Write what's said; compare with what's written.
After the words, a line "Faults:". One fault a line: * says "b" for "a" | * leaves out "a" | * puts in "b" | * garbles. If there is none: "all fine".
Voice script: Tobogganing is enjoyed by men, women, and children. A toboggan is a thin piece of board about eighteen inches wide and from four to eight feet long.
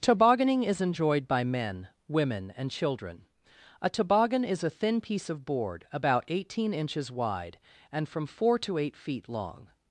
Tobogganing is enjoyed by men, women, and children. A toboggan is a thin piece of board about eighteen inches wide and from four to eight feet long.
Faults:
all fine